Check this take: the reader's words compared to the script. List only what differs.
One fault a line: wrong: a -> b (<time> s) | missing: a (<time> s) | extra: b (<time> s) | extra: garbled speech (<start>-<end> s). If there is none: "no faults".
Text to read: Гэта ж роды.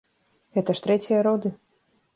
extra: трэція (0.9 s)